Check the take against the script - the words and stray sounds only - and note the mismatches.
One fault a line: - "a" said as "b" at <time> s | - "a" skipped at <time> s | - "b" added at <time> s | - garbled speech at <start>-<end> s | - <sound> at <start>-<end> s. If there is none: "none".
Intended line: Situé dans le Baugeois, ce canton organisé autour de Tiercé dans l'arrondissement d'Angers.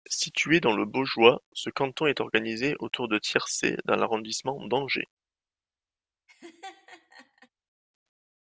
- "est" added at 2.1 s
- laugh at 6.3-7.5 s